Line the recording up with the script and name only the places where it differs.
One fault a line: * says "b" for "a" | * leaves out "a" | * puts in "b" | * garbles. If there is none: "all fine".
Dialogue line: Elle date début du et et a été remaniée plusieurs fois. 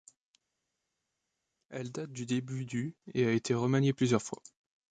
* puts in "du"
* leaves out "et"